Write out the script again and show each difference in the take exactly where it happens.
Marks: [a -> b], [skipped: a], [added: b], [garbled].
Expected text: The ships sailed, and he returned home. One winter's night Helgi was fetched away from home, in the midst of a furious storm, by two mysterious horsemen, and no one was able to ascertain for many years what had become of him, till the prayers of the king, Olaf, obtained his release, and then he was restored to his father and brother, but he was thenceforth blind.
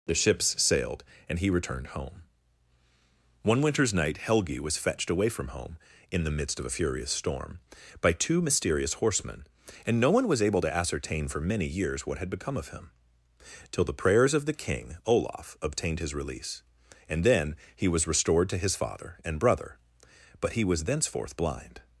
The ships sailed, and he returned home. One winter's night Helgi was fetched away from home, in the midst of a furious storm, by two mysterious horsemen, and no one was able to ascertain for many years what had become of him, till the prayers of the king, Olaf, obtained his release, and then he was restored to his father and brother, but he was thenceforth blind.